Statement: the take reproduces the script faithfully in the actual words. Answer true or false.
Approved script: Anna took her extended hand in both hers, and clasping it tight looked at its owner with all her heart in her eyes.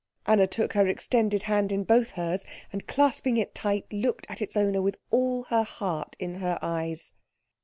true